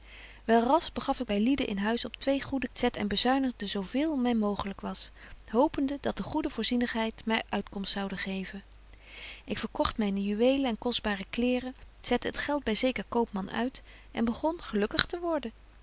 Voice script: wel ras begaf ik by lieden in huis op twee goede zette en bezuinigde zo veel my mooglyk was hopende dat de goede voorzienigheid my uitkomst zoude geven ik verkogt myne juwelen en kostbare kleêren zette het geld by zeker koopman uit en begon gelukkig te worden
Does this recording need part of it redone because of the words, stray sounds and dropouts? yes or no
no